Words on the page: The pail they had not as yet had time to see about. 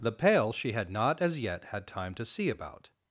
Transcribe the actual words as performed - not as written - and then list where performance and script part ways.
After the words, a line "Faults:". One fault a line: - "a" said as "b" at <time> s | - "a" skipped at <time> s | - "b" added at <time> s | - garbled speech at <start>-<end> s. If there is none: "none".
The pail she had not as yet had time to see about.
Faults:
- "they" said as "she" at 0.5 s